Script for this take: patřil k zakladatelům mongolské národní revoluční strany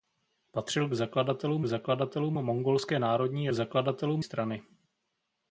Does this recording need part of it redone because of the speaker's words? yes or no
yes